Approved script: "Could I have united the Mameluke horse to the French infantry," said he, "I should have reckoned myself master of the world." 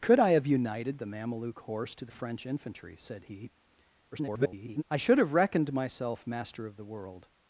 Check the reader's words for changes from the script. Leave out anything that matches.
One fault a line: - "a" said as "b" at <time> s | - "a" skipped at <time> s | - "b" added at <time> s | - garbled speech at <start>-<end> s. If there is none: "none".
- garbled speech at 4.1-4.8 s